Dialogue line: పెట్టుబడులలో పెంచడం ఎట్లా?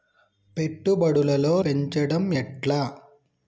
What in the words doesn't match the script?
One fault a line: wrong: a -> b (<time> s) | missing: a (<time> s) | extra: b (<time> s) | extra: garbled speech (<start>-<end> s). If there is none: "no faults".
no faults